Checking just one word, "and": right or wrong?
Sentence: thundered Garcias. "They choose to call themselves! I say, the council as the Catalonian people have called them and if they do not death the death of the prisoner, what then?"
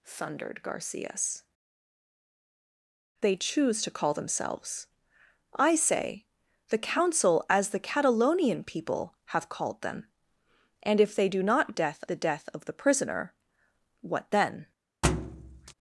right